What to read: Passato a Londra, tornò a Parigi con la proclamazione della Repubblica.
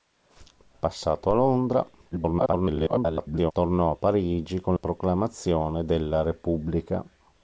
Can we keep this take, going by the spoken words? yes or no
no